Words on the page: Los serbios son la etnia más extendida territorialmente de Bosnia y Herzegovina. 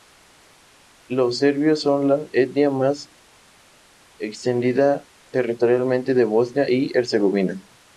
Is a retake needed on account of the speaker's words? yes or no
no